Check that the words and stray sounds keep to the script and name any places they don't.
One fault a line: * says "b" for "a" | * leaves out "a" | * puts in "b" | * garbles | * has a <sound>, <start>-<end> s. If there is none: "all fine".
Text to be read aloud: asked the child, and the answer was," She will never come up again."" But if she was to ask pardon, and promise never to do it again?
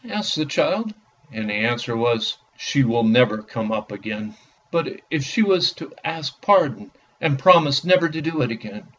all fine